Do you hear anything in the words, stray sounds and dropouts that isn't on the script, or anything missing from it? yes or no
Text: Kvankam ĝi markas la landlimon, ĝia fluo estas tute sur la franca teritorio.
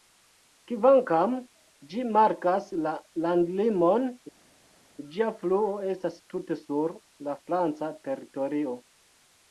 no